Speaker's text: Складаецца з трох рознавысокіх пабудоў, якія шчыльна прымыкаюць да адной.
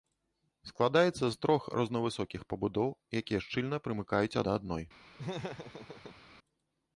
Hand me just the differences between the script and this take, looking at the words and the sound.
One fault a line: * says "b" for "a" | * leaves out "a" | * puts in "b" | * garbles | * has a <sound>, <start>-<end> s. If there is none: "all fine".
* has a laugh, 5.2-6.2 s